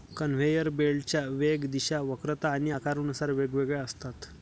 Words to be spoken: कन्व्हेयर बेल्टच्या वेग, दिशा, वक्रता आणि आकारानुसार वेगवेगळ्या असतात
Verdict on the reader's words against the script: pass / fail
pass